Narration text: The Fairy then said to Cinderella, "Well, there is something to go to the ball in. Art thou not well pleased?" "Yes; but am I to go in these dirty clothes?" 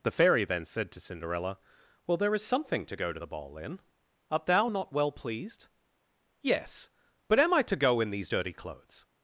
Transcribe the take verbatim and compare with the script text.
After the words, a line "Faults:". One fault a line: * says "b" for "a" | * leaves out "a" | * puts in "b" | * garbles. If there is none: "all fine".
The Fairy then said to Cinderella, "Well, there is something to go to the ball in. Art thou not well pleased?" "Yes; but am I to go in these dirty clothes?"
Faults:
all fine